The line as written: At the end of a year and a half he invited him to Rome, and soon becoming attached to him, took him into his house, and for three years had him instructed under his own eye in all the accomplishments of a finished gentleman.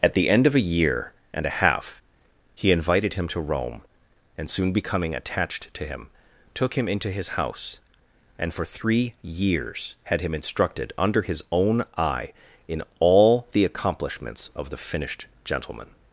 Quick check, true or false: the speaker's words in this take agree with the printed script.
false